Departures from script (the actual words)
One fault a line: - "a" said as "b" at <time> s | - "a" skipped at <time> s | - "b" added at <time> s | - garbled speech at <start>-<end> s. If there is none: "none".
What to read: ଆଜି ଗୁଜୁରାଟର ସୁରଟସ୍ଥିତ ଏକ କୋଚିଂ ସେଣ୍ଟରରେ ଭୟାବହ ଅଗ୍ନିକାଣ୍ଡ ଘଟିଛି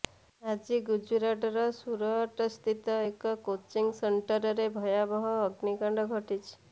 none